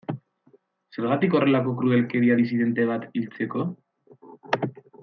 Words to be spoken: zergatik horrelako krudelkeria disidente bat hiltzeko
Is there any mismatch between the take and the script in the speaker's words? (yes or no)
no